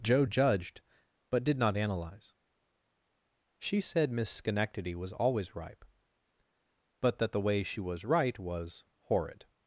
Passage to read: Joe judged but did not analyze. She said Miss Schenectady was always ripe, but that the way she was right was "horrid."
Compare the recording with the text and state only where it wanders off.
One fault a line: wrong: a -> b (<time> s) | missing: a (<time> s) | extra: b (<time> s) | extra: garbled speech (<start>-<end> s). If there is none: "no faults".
no faults